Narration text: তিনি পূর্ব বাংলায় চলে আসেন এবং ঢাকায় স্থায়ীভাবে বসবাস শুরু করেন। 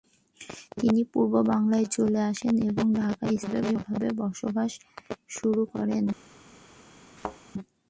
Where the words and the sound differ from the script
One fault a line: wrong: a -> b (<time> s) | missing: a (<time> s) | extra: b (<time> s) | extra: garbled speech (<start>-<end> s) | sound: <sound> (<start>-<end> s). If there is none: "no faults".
sound: thud (7.2-7.4 s)